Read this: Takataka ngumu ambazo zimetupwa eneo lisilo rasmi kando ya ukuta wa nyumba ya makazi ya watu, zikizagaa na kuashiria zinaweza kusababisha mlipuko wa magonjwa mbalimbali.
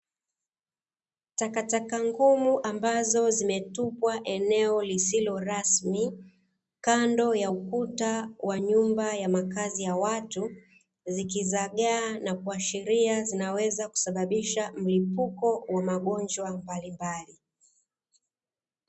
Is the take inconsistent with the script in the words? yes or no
no